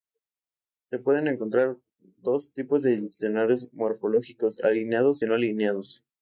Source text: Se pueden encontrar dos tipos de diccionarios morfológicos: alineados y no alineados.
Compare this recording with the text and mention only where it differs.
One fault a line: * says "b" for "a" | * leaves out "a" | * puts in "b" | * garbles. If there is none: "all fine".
all fine